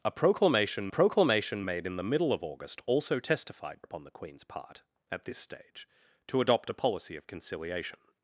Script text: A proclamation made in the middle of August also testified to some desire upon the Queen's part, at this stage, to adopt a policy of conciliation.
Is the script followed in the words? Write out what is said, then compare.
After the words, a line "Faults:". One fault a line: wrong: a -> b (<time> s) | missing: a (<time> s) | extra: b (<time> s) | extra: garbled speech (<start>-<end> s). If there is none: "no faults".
A proclamation proclamation made in the middle of August also testified upon the Queen's part, at this stage, to adopt a policy of conciliation.
Faults:
extra: proclamation (0.9 s)
missing: to some desire (3.8 s)